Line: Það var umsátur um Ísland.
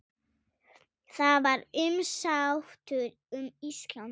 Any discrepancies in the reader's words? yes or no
no